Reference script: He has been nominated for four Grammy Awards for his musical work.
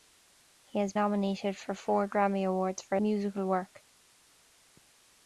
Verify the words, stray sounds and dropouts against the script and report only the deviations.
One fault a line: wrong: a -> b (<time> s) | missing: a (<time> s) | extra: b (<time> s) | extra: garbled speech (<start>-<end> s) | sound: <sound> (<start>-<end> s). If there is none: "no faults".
missing: been (0.9 s)
missing: his (3.0 s)